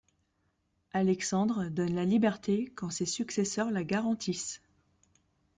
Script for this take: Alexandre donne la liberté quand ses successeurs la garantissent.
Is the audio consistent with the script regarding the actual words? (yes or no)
yes